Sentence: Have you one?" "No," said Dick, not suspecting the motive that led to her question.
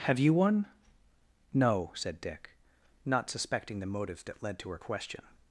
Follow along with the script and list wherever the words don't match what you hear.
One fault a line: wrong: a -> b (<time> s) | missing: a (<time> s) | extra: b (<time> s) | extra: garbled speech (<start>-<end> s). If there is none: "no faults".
no faults